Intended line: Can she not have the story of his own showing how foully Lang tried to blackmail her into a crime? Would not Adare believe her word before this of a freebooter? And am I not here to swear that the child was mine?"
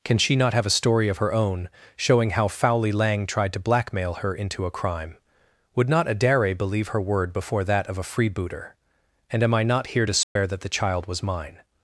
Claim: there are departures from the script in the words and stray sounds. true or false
true